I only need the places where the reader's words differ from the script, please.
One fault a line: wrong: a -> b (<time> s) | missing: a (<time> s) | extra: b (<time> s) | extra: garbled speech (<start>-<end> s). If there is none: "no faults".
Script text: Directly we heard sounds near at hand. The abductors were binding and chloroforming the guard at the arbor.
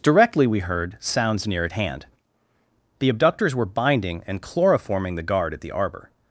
no faults